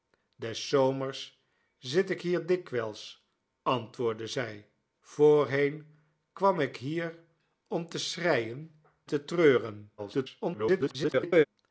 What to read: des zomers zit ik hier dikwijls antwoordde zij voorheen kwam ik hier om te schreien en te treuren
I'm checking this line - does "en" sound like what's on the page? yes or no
no